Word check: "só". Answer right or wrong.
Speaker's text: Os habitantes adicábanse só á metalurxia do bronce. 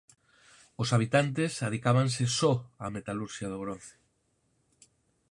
right